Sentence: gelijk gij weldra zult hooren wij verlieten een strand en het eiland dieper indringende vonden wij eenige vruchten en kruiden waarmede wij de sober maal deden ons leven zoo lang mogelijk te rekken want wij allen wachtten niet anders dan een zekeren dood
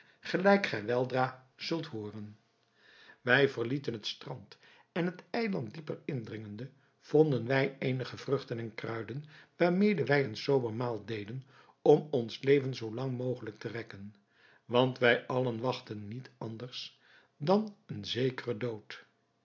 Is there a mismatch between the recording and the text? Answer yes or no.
yes